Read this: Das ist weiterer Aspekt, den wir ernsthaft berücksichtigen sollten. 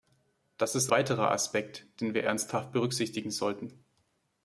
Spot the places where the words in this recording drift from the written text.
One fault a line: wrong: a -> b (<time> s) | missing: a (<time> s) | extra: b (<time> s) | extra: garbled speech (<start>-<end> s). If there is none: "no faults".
no faults